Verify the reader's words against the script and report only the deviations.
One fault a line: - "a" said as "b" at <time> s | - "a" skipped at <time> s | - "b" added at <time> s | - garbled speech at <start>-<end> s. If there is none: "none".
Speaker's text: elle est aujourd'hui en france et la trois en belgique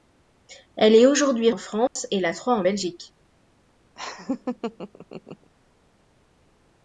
none